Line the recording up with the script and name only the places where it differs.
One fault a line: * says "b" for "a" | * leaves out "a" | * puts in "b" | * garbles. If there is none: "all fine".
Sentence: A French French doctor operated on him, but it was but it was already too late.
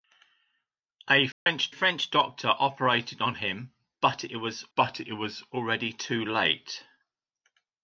all fine